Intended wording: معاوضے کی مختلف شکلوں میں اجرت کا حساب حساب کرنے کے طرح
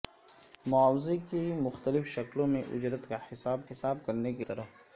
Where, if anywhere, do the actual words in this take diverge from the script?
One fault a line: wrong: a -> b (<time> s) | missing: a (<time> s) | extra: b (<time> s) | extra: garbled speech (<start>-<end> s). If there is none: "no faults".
no faults